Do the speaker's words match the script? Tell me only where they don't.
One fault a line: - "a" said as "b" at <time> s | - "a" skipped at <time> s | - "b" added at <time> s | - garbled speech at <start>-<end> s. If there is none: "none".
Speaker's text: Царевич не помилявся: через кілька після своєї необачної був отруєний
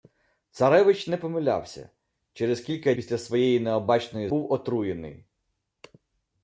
none